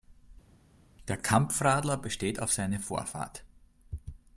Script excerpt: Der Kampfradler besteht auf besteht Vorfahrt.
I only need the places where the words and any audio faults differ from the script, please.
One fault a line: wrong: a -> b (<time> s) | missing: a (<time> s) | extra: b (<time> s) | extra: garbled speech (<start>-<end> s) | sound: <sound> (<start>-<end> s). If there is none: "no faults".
wrong: besteht -> seine (2.5 s)